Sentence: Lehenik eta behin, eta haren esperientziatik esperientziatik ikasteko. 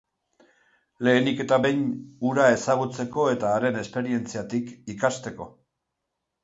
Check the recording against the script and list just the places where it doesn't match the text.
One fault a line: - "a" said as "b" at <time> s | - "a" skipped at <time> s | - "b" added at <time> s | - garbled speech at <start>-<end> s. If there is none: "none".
- "hura ezagutzeko" added at 2.3 s
- "esperientziatik" skipped at 4.8 s